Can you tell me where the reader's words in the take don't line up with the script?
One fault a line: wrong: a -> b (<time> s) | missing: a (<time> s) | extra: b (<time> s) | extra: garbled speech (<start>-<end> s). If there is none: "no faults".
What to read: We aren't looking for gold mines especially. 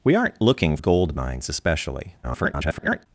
missing: for (0.8 s)
extra: garbled speech (2.2-3.1 s)